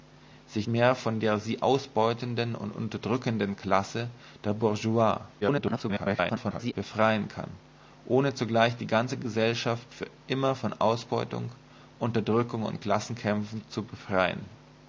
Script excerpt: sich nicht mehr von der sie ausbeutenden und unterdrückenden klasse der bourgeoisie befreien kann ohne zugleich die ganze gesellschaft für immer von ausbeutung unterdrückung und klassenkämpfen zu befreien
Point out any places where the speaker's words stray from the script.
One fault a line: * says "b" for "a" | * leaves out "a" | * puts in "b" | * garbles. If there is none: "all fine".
* leaves out "nicht"
* garbles